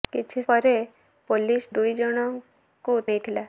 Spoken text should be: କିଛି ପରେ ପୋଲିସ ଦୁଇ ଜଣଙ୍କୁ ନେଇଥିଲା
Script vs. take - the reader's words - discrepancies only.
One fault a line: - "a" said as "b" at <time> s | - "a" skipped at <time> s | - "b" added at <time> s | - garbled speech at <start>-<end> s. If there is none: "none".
none